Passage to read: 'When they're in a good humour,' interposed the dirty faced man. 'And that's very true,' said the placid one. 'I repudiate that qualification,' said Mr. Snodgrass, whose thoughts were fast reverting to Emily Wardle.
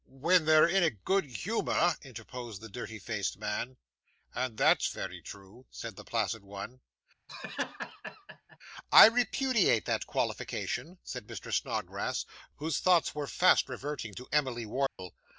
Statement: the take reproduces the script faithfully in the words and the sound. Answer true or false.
false